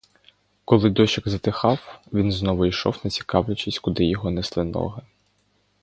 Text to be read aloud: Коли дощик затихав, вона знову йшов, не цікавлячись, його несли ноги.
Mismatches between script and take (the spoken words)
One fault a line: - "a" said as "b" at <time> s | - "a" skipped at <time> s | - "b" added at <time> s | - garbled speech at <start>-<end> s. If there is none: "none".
- "вона" said as "він" at 2.1 s
- "куди" added at 3.8 s